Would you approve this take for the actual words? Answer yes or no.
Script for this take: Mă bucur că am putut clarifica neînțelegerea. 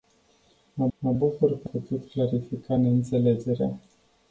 no